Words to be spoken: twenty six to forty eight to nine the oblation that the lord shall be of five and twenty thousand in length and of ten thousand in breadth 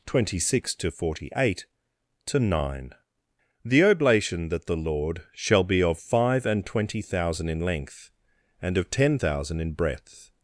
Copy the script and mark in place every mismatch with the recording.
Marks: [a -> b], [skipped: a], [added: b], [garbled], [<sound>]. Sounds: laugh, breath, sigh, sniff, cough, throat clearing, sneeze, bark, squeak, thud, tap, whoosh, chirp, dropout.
twenty six to forty eight to nine the oblation that the lord shall be of five and twenty thousand in length and of ten thousand in breadth